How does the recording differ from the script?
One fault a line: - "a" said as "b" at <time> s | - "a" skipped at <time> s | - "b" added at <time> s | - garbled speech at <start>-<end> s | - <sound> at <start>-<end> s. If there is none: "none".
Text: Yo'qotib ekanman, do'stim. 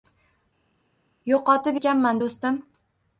none